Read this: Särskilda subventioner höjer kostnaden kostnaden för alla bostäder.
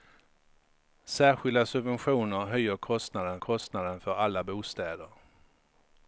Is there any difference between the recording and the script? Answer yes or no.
no